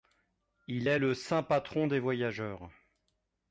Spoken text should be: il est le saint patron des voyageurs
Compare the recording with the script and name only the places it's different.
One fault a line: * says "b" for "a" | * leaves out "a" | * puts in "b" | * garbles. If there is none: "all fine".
all fine